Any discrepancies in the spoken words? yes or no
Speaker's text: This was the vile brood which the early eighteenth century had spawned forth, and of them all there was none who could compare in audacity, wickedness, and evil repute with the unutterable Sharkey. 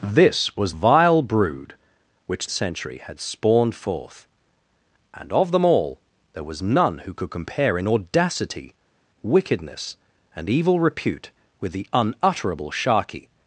yes